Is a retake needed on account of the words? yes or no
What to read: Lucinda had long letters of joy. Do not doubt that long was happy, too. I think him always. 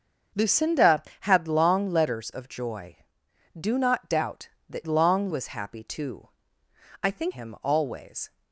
no